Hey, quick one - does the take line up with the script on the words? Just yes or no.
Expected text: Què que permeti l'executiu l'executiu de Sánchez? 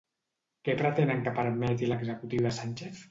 no